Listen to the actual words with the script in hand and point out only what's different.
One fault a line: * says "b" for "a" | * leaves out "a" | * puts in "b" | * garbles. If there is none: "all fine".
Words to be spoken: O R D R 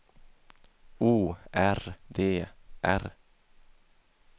all fine